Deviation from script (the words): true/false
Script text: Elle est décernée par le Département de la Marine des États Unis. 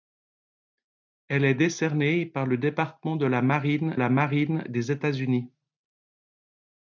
true